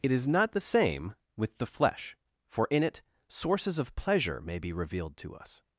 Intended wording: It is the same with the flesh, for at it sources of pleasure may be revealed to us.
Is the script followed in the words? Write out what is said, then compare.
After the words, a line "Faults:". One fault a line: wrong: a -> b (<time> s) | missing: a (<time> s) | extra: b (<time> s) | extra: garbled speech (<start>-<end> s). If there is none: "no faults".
It is not the same with the flesh, for in it sources of pleasure may be revealed to us.
Faults:
extra: not (0.3 s)
wrong: at -> in (2.7 s)